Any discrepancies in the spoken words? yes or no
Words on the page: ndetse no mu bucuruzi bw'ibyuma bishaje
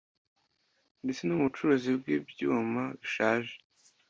no